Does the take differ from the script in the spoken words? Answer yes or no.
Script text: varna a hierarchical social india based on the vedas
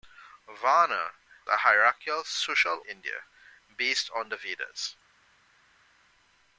no